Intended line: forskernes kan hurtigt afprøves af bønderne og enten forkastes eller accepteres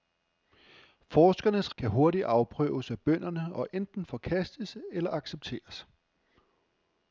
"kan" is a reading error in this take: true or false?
false